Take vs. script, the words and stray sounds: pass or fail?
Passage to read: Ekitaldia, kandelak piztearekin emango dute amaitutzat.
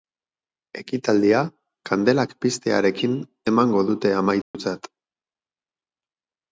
fail